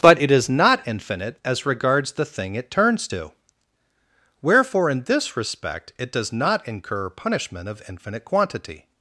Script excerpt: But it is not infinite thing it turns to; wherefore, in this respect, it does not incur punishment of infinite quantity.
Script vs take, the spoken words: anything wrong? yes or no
yes